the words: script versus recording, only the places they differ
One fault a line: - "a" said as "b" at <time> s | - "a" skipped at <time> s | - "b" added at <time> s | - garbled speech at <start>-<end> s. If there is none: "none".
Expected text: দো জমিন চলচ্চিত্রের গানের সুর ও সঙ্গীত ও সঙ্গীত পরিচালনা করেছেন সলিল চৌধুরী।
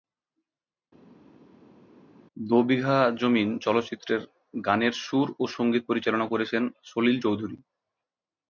- "বিঘা" added at 2.7 s
- "ও সঙ্গীত" skipped at 5.8 s